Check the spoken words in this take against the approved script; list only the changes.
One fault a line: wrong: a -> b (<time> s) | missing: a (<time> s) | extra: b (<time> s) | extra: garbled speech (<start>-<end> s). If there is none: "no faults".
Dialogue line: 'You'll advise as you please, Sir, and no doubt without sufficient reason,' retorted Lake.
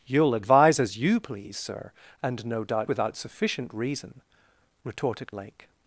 no faults